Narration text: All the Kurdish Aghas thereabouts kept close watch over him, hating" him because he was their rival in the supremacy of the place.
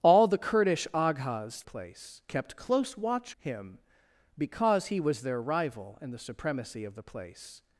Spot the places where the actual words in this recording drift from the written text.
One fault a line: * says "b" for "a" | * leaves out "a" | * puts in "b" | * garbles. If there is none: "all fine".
* says "place" for "thereabouts"
* leaves out "over him hating"